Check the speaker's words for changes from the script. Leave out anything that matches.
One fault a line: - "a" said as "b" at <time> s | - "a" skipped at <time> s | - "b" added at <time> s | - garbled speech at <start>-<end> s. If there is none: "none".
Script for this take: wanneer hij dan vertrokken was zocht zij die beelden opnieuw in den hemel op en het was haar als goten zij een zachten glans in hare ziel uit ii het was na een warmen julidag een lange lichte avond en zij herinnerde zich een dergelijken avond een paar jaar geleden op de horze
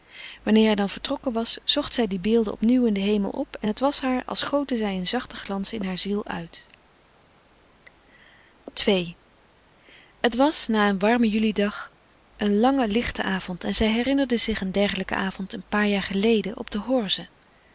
none